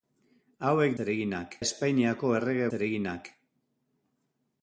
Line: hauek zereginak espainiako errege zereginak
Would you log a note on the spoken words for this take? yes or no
no